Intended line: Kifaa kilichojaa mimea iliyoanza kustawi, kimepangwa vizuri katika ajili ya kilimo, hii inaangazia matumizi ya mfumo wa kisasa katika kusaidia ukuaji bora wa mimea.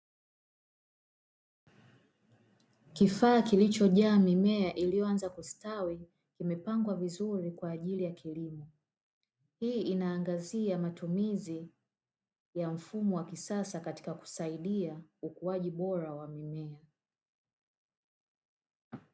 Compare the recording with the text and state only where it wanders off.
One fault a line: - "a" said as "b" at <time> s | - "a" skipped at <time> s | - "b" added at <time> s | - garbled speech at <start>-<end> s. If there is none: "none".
- "katika" said as "kwa" at 7.5 s